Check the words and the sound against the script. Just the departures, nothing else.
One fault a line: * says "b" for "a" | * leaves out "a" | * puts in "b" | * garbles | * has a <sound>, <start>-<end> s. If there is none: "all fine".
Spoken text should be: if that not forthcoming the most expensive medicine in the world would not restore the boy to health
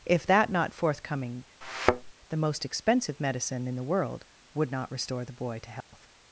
* has a thud, 1.6-2.1 s
* has a dropout, 5.8-5.9 s